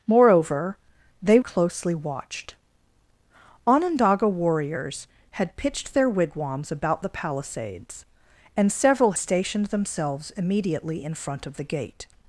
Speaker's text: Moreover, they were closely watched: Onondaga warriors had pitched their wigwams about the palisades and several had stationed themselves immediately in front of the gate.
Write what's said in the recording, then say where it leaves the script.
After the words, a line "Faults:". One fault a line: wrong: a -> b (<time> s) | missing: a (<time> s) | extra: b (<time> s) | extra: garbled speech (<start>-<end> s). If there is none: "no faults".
Moreover, they closely watched: Onondaga warriors had pitched their wigwams about the palisades and several stationed themselves immediately in front of the gate.
Faults:
missing: were (1.4 s)
missing: had (9.1 s)